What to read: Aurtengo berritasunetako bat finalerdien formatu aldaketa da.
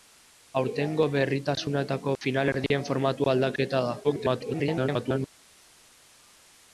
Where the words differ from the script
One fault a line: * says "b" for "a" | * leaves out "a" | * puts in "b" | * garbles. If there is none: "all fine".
* leaves out "bat"
* garbles